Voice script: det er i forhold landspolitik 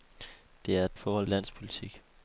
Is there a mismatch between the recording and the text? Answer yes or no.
no